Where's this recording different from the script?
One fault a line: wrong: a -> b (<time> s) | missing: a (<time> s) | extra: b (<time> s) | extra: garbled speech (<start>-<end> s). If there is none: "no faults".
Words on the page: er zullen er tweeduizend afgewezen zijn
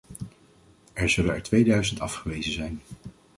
no faults